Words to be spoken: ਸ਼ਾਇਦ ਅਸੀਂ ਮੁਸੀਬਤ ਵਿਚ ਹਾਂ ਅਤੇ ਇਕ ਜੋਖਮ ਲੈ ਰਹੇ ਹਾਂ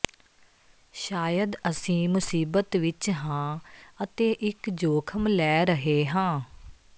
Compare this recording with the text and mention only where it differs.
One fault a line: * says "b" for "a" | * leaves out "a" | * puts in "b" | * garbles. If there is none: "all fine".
all fine